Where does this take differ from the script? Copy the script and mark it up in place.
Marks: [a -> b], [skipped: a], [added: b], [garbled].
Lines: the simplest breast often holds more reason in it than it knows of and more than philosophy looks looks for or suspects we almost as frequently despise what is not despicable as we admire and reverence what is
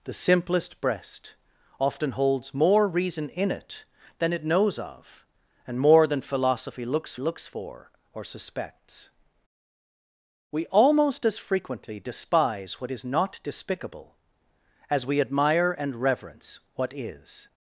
the simplest breast often holds more reason in it than it knows of and more than philosophy looks looks for or suspects we almost as frequently despise what is not despicable as we admire and reverence what is